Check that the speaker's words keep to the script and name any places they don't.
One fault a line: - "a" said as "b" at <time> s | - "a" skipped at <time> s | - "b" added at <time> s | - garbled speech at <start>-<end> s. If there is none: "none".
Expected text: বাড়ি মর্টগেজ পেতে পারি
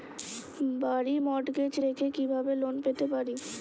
- "রেখে কিভাবে লোন" added at 1.8 s